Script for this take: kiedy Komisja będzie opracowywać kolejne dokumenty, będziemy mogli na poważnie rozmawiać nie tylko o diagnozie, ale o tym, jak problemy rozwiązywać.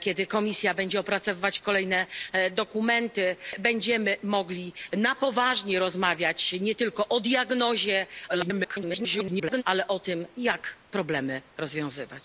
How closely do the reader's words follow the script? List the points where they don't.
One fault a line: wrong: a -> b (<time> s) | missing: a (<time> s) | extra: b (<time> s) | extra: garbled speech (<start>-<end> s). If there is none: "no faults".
extra: garbled speech (8.3-9.6 s)